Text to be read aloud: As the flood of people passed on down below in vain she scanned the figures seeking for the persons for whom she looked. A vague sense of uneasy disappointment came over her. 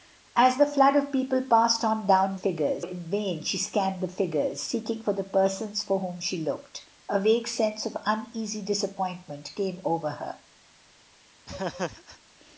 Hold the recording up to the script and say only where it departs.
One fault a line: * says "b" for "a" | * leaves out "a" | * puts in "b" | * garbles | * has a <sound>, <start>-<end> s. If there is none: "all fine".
* says "figures" for "below"
* has a laugh, 11.5-12.2 s